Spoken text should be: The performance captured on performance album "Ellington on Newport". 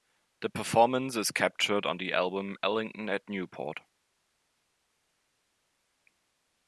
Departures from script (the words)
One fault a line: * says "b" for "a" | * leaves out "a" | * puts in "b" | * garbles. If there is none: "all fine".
* puts in "is"
* says "the" for "performance"
* says "at" for "on"